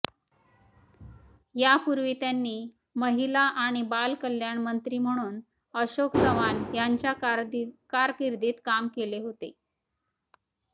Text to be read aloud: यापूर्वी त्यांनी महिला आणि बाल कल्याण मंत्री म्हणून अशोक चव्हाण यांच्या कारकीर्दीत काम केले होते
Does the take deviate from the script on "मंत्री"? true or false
false